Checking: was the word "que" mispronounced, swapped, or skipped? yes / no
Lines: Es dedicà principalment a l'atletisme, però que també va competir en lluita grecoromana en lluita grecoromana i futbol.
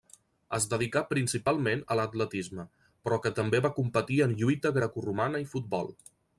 no